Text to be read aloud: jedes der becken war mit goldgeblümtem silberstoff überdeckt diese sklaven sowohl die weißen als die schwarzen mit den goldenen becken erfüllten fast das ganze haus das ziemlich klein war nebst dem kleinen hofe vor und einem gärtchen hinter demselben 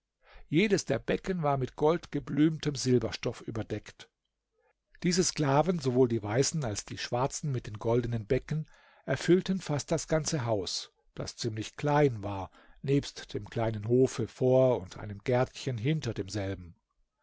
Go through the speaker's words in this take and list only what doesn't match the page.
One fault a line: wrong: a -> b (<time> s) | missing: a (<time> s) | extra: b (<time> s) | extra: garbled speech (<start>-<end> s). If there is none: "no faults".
no faults